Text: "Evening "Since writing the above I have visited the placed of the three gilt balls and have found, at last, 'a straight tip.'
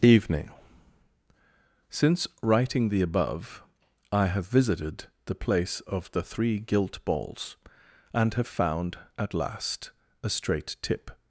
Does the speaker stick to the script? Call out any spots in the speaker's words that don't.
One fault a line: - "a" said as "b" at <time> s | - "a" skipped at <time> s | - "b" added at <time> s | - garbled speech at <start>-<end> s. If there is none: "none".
- "placed" said as "place" at 5.3 s